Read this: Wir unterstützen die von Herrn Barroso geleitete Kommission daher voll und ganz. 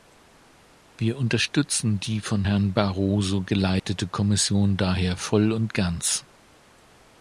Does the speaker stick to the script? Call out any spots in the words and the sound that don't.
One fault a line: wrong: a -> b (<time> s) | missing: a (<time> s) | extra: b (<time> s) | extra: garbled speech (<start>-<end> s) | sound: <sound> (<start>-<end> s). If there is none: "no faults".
sound: dropout (3.8-3.8 s)